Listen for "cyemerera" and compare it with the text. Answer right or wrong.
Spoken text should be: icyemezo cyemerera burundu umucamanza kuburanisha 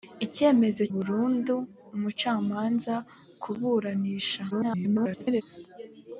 wrong